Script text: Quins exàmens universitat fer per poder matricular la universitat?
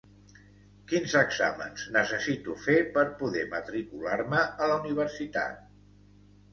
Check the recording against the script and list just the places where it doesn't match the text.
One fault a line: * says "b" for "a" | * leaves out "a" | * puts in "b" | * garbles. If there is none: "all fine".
* says "necessito" for "universitat"
* puts in "me a"